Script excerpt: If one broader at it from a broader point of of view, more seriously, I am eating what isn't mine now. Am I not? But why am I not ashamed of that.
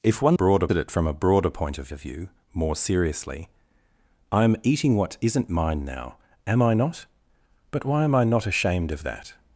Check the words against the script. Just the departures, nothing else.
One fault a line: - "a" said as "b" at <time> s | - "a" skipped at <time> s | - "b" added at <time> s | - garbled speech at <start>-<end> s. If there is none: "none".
none